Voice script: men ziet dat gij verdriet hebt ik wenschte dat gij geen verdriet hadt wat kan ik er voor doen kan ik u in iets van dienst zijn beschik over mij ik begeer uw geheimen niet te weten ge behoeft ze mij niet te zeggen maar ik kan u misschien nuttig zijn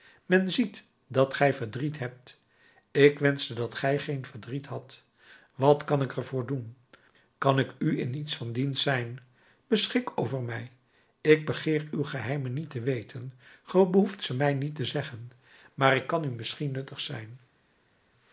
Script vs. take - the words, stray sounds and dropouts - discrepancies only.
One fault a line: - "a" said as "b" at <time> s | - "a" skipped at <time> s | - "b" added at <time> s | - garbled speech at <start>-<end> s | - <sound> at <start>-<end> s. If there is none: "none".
none